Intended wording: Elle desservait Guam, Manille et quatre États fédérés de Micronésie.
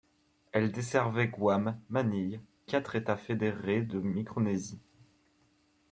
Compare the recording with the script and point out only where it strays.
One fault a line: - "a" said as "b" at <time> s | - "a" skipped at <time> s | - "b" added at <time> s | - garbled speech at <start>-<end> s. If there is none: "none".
none